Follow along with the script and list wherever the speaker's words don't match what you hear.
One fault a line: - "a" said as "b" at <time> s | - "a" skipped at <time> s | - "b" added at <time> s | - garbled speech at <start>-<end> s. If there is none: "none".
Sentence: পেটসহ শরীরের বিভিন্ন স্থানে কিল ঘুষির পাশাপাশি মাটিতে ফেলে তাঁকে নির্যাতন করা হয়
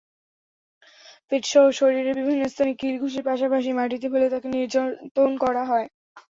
none